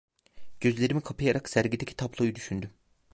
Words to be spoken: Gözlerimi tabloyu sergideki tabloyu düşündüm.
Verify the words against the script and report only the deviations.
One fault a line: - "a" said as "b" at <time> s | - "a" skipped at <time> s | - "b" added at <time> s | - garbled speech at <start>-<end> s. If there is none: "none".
- "tabloyu" said as "kapayarak" at 1.0 s